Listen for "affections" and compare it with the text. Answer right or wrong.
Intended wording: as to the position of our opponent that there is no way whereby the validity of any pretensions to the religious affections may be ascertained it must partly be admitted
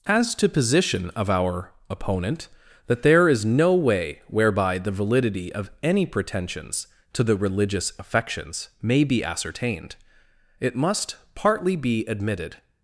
right